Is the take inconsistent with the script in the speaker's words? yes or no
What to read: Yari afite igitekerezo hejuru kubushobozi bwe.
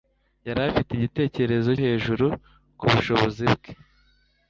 no